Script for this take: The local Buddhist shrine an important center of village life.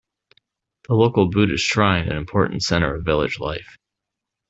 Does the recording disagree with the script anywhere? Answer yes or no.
no